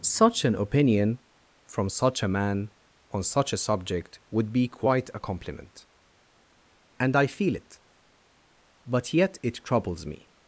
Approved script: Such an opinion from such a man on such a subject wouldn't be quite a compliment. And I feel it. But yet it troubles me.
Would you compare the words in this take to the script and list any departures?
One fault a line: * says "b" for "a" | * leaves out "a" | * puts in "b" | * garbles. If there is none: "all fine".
* says "would" for "wouldn't"